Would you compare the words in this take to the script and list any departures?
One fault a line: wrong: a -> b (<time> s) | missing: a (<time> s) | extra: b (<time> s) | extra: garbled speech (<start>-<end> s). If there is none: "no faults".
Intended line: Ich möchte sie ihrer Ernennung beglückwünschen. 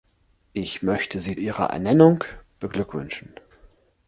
no faults